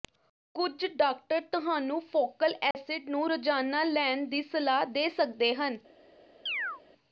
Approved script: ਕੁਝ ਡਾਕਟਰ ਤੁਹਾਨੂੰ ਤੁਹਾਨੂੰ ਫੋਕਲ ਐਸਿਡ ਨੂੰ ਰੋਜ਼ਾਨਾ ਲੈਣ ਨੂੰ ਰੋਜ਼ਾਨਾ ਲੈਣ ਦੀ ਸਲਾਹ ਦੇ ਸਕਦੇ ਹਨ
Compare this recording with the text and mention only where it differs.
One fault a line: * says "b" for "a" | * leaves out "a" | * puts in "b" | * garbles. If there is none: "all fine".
* leaves out "ਤੁਹਾਨੂੰ"
* leaves out "ਨੂੰ ਰੋਜ਼ਾਨਾ ਲੈਣ"